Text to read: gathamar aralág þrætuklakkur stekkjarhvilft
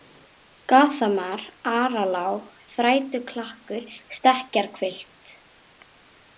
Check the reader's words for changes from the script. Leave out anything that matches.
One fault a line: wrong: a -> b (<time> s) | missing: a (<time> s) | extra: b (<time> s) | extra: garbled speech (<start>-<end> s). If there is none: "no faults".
no faults